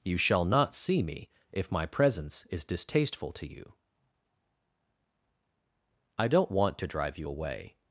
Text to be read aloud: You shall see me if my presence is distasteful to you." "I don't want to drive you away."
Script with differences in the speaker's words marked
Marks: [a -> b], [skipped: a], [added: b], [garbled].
You shall [added: not] see me if my presence is distasteful to you." "I don't want to drive you away."